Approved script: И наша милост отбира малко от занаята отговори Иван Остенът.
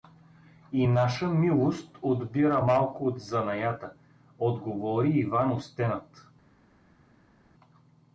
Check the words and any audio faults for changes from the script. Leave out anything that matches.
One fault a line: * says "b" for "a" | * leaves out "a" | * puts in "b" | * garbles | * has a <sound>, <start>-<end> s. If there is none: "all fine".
all fine